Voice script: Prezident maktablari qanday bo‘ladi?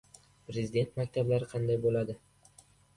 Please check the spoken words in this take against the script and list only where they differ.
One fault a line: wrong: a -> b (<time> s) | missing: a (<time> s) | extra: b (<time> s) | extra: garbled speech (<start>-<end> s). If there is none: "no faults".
no faults